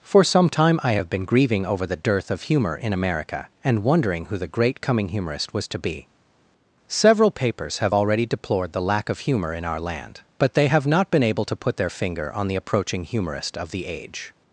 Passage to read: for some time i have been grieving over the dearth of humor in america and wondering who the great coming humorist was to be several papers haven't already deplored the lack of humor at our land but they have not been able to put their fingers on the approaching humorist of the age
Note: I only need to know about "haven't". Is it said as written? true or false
false